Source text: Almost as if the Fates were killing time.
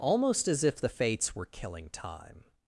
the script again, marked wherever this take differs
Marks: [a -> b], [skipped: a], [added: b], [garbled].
Almost as if the Fates were killing time.